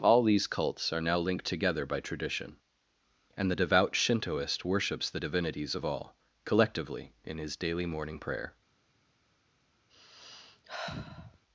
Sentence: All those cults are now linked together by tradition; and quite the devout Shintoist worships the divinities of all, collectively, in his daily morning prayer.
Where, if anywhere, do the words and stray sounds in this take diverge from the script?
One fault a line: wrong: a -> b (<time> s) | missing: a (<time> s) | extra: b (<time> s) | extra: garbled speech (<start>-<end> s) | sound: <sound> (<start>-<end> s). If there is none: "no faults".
wrong: those -> these (0.2 s)
missing: quite (3.5 s)
sound: sigh (9.9-11.4 s)